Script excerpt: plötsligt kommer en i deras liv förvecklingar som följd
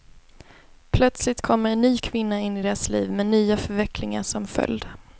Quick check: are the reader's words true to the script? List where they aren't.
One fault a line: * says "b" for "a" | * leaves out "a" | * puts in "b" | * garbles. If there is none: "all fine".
* puts in "ny kvinna in"
* puts in "med nya"